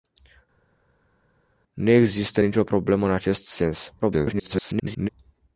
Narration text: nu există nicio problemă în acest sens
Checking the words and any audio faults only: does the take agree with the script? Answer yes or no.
no